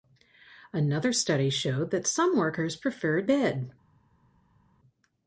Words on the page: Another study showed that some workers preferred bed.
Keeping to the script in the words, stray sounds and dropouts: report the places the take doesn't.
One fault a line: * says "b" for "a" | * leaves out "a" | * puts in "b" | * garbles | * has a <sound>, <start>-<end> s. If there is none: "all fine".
all fine